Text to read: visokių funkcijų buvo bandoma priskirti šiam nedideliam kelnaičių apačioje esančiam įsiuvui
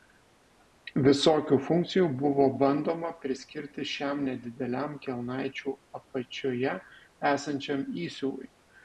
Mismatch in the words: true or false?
false